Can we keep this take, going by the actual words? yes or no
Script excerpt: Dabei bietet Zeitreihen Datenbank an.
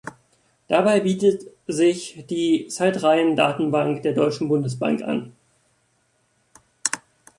no